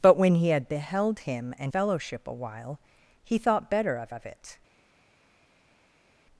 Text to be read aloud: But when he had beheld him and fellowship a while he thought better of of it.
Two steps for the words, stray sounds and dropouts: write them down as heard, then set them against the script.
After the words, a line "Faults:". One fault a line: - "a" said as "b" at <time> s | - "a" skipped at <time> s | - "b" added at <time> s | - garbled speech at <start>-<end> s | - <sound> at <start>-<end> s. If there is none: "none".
But when he had beheld him and fellowship a while he thought better of of it.
Faults:
none